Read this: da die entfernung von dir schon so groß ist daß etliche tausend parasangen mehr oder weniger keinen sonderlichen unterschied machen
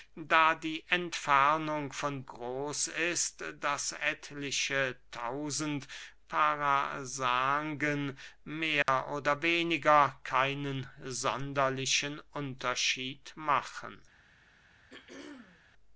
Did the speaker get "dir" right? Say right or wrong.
wrong